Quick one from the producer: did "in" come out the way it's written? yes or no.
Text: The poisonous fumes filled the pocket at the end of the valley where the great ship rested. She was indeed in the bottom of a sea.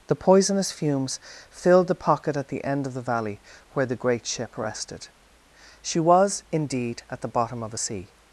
no